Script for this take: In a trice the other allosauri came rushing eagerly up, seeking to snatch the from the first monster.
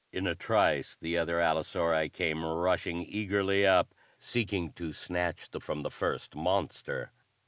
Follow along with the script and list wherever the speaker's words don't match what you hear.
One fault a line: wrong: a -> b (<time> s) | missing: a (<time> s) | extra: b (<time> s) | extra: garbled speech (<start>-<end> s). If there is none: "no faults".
no faults